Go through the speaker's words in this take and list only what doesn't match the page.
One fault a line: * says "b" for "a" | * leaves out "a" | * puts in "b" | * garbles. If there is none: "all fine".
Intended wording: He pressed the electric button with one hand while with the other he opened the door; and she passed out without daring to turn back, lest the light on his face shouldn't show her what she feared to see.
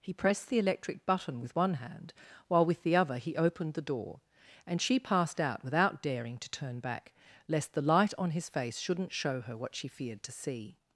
all fine